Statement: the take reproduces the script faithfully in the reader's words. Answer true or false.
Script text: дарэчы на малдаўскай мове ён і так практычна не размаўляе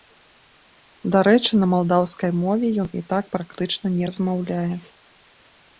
true